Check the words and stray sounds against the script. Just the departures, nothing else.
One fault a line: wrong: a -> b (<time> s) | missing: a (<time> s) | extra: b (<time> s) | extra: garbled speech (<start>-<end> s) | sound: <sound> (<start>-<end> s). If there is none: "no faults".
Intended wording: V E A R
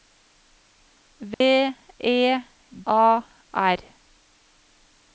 sound: dropout (1.3-1.4 s)